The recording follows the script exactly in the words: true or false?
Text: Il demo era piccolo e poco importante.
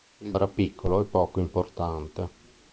false